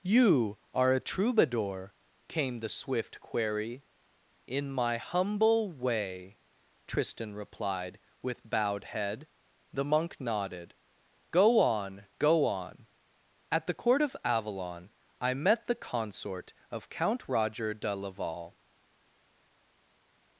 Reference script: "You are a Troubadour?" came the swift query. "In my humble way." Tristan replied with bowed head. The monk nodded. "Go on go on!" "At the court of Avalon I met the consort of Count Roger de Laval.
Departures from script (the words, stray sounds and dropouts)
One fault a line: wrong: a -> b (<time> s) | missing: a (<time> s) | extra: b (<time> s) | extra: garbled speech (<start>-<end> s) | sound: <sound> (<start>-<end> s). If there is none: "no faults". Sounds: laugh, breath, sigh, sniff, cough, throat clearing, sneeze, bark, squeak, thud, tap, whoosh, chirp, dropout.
no faults